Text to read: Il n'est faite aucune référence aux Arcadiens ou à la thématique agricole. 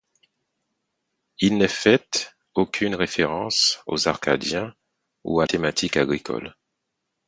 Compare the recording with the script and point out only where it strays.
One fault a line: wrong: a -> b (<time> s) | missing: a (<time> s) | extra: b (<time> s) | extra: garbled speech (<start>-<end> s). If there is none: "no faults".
missing: la (5.5 s)